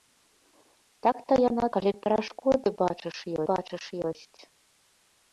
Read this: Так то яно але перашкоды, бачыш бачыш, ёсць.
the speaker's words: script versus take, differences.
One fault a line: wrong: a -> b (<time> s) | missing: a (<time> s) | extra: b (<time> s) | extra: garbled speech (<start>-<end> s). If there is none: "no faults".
no faults